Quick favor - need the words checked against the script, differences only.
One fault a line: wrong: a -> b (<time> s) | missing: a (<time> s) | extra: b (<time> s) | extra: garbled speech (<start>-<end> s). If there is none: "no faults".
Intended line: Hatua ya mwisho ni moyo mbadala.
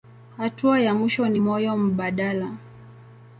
no faults